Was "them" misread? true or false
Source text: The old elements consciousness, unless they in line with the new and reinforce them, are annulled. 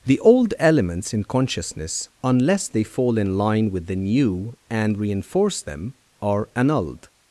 false